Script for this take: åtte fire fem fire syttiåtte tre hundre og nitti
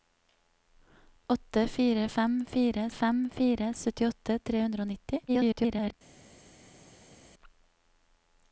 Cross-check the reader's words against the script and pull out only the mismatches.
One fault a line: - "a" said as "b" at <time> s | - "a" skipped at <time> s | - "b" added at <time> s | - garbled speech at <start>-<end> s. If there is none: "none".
- "fem fire" added at 2.9 s
- garbled speech at 5.3-5.9 s